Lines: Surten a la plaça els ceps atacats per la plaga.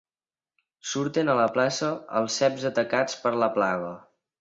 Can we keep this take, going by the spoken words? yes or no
yes